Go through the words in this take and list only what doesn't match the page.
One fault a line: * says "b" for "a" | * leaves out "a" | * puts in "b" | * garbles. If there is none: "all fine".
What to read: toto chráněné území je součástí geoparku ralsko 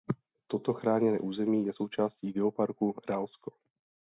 all fine